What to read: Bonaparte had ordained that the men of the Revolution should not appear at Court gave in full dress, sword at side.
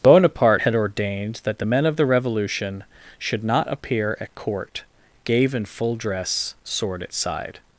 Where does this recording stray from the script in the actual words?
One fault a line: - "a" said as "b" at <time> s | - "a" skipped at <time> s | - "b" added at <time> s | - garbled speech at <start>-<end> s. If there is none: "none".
none